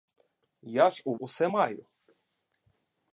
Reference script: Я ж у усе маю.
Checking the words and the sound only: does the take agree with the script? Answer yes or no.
yes